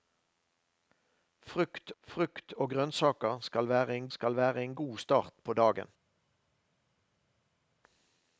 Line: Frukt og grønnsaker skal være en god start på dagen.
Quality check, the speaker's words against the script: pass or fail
fail